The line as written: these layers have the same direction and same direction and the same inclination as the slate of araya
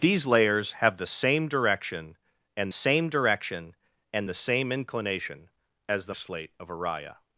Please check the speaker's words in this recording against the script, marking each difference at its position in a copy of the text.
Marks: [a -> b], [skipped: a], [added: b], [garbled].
these layers have the same direction and same direction and the same inclination as the slate of araya